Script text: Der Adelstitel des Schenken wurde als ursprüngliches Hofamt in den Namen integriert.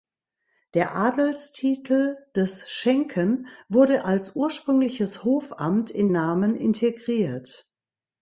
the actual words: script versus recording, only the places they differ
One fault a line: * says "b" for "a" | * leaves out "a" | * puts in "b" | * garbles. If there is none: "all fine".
* leaves out "den"